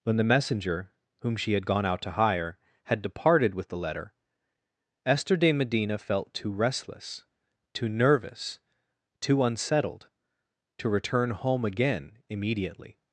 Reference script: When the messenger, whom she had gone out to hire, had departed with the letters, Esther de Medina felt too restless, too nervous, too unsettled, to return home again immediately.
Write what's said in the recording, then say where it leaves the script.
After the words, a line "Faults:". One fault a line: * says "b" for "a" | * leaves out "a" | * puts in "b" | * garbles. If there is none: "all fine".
When the messenger, whom she had gone out to hire, had departed with the letter, Esther de Medina felt too restless, too nervous, too unsettled, to return home again immediately.
Faults:
* says "letter" for "letters"